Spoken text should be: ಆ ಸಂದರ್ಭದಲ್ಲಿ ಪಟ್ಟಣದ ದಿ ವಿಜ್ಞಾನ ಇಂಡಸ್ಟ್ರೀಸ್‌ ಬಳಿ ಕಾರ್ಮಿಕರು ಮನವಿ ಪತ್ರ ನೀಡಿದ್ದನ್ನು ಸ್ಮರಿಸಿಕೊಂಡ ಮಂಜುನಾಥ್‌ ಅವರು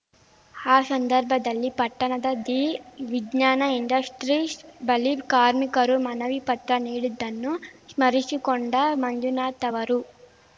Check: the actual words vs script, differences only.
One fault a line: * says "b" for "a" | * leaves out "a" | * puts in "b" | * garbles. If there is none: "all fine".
all fine